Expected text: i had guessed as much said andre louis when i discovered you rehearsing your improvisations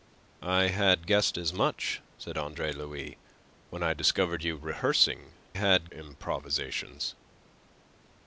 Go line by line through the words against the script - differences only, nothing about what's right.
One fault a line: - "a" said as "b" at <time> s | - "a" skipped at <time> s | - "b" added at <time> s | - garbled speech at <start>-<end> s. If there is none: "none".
- "your" said as "had" at 5.5 s